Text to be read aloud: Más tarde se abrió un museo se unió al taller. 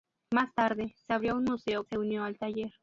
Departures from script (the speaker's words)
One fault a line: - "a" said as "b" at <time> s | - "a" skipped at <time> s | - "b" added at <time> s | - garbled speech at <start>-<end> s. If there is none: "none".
none